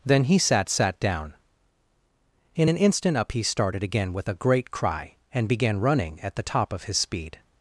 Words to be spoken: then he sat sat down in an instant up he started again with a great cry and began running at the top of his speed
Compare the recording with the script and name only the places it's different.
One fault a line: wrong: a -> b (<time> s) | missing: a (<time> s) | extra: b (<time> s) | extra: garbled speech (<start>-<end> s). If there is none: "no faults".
no faults